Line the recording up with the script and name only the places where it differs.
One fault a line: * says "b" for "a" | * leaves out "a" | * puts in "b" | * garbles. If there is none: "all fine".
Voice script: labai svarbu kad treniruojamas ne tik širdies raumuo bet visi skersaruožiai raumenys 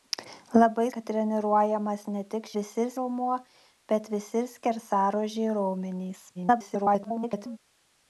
* leaves out "svarbu"
* says "visi" for "širdies"
* garbles